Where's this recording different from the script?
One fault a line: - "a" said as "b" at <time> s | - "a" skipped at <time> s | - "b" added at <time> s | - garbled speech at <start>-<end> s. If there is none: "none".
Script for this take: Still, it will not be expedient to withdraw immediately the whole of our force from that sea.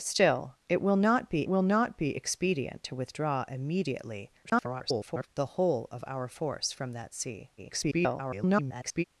- "will not be" added at 1.5 s
- garbled speech at 4.4-5.3 s
- garbled speech at 7.6-9.0 s